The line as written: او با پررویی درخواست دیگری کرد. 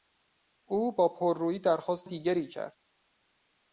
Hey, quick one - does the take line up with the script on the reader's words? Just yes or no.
yes